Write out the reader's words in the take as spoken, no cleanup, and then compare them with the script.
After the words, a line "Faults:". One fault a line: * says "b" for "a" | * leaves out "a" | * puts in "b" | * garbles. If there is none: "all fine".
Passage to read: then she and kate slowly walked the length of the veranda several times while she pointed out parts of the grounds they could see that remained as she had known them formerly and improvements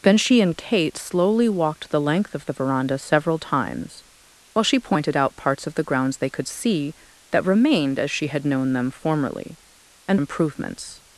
then she and kate slowly walked the length of the veranda several times while she pointed out parts of the grounds they could see that remained as she had known them formerly and improvements
Faults:
all fine